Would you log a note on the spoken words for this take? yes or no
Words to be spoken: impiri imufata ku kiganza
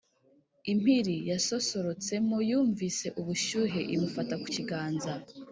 yes